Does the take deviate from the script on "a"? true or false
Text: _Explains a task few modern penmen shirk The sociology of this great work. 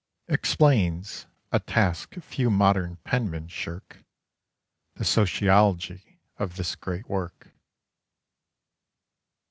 false